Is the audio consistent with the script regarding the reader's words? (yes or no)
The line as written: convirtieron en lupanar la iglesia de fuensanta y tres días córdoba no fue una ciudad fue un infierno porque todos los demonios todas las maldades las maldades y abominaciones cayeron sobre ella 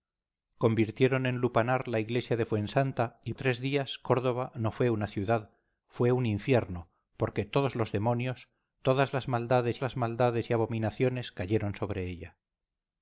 yes